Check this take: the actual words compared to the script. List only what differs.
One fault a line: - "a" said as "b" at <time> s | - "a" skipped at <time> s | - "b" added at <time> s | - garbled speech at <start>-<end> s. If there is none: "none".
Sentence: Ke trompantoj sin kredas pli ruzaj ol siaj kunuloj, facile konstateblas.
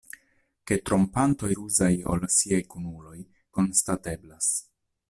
- "sin kredas pli" skipped at 1.5 s
- "facile" skipped at 3.2 s